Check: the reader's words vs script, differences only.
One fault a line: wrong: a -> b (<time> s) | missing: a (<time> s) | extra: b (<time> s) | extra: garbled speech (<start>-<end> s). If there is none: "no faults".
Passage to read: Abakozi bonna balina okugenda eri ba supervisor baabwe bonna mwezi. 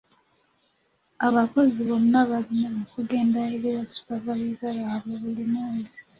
wrong: bonna -> buli (5.2 s)